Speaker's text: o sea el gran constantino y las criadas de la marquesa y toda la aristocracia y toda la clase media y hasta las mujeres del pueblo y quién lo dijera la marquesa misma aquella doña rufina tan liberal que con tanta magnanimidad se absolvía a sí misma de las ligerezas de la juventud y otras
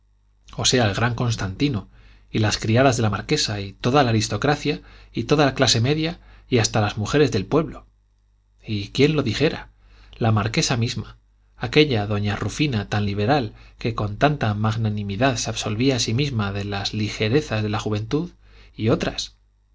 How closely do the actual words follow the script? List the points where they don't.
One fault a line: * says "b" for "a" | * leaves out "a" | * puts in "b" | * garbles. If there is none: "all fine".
all fine